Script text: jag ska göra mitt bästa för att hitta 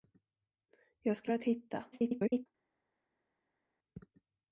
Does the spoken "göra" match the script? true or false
false